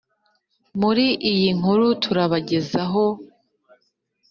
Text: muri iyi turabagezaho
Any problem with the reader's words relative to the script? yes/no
yes